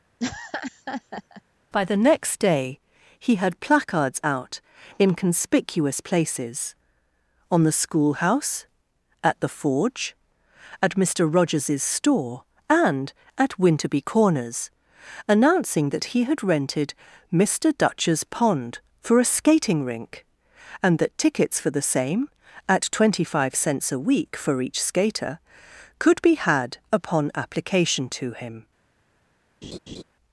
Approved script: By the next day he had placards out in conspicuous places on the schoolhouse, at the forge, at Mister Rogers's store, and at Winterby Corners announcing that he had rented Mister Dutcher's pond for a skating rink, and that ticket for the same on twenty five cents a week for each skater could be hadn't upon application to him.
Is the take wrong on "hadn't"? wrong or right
wrong